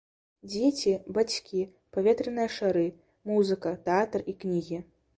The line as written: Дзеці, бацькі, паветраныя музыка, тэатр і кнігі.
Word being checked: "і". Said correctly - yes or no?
yes